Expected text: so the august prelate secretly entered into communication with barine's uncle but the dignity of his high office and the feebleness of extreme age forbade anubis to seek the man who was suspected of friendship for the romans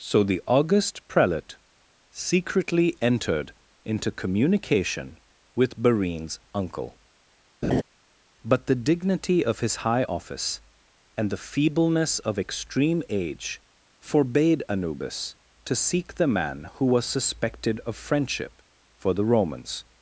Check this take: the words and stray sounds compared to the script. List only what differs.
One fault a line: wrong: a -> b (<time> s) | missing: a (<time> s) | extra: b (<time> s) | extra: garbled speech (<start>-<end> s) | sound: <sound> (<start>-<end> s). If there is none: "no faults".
sound: laugh (7.6-7.8 s)